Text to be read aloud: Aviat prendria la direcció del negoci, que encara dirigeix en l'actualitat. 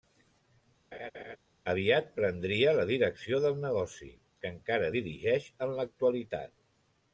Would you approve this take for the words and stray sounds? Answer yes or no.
no